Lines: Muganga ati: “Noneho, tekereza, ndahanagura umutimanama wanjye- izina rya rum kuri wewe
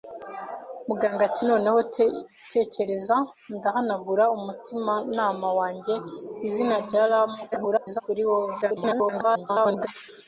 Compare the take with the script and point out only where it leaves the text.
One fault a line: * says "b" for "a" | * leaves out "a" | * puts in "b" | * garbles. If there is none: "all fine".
* garbles
* garbles